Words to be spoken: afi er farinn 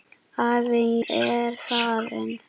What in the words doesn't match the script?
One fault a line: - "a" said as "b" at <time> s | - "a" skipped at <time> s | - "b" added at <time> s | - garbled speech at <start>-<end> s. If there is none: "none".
none